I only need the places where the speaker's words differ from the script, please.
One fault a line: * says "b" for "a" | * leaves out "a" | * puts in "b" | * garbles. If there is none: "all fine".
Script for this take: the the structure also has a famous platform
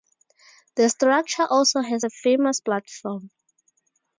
* leaves out "the"